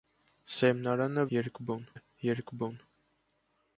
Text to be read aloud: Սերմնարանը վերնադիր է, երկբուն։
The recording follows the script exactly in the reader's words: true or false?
false